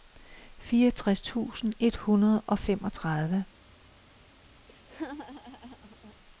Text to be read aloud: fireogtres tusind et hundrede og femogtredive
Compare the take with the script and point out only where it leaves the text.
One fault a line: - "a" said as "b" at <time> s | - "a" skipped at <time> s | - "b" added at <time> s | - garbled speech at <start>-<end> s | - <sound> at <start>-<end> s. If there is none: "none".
- laugh at 4.7-6.1 s